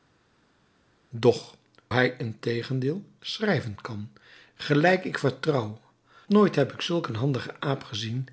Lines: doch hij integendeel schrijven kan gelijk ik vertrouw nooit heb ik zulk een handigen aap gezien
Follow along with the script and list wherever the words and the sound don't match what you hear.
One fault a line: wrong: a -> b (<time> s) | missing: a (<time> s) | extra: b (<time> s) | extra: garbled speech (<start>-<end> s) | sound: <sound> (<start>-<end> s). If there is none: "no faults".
no faults